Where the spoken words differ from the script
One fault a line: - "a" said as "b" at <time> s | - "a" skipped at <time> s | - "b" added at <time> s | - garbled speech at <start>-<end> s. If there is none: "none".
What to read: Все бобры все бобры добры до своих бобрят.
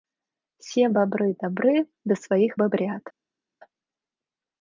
- "все бобры" skipped at 1.4 s